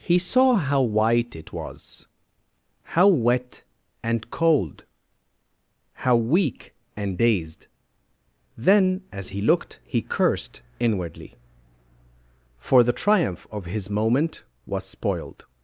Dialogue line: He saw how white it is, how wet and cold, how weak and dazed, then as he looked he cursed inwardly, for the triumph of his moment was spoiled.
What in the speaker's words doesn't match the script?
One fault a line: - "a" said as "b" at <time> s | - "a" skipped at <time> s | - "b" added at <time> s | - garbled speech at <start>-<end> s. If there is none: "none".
- "is" said as "was" at 1.5 s